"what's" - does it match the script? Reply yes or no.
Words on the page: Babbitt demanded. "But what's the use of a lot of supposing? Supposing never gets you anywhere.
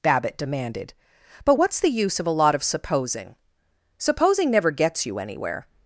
yes